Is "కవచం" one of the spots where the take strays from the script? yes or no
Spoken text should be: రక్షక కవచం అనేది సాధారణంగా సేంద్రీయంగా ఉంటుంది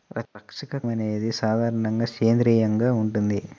yes